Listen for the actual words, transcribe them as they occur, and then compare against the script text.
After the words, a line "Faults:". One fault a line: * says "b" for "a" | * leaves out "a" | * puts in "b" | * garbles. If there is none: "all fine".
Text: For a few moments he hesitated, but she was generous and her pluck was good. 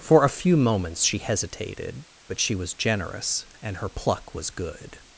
For a few moments she hesitated, but she was generous and her pluck was good.
Faults:
* says "she" for "he"